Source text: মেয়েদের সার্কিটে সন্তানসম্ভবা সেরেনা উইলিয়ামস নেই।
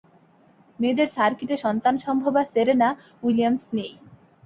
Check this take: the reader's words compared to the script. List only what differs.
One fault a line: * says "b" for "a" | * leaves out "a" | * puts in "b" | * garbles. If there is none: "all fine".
all fine